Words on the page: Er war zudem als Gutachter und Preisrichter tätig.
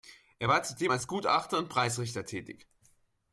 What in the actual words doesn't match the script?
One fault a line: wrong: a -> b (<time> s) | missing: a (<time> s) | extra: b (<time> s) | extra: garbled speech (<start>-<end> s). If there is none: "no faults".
no faults